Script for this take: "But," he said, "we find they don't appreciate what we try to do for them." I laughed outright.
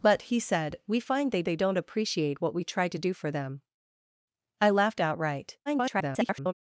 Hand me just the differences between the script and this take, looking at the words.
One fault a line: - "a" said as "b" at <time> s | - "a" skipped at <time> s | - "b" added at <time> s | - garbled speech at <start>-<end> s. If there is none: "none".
- "they" added at 1.4 s
- garbled speech at 5.7-6.5 s